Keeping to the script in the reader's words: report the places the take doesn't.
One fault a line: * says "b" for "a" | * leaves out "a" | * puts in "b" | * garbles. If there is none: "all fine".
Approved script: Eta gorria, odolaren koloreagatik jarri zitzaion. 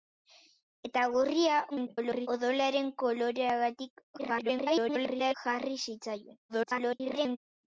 * garbles
* garbles
* garbles